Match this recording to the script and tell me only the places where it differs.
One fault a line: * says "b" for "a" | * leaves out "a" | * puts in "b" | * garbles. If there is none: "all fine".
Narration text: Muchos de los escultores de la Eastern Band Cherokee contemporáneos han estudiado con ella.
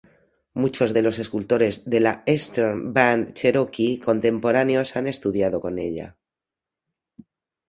all fine